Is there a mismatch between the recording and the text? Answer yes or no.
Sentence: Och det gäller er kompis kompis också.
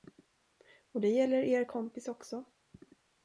yes